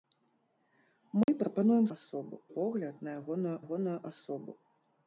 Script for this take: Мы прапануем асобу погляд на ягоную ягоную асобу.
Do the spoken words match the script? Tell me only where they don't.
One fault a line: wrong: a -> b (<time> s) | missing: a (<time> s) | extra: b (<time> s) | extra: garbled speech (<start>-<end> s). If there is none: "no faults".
no faults